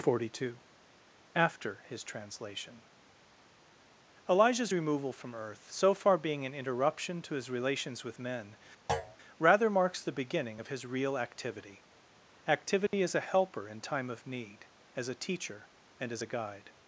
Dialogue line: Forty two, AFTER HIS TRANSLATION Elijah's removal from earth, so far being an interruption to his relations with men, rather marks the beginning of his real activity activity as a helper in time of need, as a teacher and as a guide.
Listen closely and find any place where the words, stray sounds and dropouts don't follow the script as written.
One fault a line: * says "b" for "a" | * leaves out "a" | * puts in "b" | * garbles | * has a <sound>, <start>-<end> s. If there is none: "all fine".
* has a thud, 8.9-9.2 s
* has a dropout, 12.9-12.9 s